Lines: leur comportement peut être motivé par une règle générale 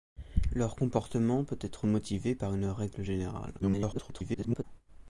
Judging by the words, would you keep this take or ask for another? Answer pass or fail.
fail